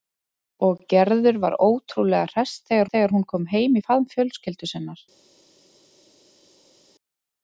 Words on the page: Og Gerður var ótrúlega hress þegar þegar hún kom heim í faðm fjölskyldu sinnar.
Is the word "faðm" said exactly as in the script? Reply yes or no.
yes